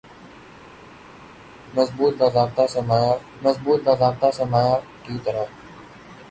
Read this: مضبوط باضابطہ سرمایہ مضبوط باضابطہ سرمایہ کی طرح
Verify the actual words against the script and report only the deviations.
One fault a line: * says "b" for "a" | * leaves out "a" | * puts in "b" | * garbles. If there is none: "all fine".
all fine